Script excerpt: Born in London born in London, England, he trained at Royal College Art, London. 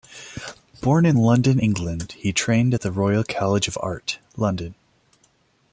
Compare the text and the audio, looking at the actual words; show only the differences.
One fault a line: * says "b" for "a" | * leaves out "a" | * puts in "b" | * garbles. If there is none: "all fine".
* leaves out "born in London"
* puts in "the"
* puts in "of"